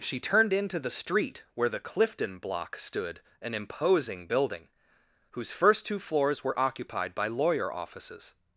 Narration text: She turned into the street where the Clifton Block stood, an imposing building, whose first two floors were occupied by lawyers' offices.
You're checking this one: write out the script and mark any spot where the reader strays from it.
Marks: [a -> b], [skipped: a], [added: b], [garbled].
She turned into the street where the Clifton Block stood, an imposing building, whose first two floors were occupied by [lawyers' -> lawyer] offices.